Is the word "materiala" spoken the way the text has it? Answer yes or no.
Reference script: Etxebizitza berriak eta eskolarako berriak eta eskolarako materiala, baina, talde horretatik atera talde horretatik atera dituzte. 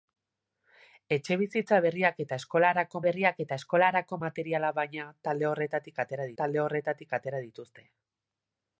yes